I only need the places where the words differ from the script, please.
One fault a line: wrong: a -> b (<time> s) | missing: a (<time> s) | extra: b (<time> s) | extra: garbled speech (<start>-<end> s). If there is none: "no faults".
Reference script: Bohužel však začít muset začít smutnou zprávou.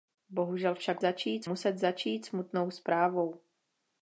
no faults